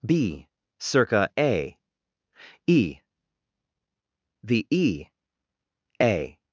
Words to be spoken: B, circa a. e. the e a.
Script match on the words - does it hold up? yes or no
yes